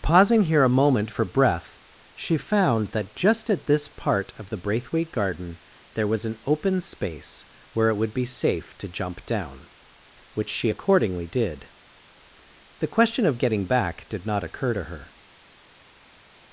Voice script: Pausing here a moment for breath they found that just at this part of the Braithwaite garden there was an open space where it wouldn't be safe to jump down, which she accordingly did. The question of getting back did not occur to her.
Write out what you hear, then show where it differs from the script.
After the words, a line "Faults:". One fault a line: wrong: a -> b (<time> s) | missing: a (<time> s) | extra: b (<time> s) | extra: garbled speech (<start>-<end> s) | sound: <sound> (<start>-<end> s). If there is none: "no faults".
Pausing here a moment for breath she found that just at this part of the Braithwaite garden there was an open space where it would be safe to jump down, which she accordingly did. The question of getting back did not occur to her.
Faults:
wrong: they -> she (2.2 s)
wrong: wouldn't -> would (8.0 s)